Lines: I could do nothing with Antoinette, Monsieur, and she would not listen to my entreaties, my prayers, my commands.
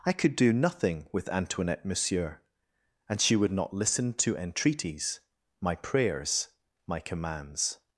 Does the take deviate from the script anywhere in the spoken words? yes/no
yes